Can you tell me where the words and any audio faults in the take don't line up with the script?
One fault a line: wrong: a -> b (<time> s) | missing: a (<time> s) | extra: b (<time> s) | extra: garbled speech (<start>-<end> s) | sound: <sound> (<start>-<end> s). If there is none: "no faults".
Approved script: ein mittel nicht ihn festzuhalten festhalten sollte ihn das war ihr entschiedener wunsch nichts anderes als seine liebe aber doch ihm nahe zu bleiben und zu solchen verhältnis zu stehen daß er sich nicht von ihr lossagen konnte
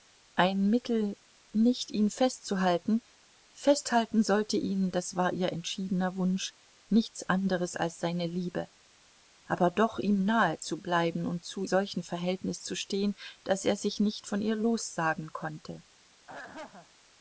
sound: throat clearing (16.3-16.9 s)